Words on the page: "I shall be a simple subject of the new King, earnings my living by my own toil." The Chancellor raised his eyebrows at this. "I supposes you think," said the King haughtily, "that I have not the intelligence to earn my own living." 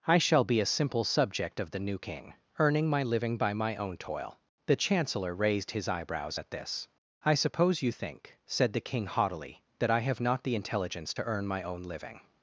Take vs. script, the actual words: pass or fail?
fail